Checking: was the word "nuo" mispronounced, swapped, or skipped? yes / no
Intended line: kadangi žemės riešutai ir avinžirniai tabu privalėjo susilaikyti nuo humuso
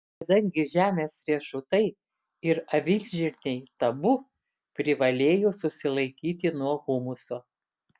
no